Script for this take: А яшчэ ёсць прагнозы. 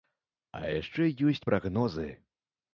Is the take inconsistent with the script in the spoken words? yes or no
no